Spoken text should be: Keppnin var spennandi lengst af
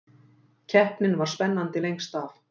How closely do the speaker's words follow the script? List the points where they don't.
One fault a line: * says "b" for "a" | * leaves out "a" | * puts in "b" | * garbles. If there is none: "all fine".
all fine